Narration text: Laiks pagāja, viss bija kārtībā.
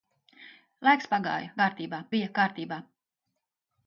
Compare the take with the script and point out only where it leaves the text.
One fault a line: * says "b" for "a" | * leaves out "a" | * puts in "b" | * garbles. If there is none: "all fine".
* says "kārtībā" for "viss"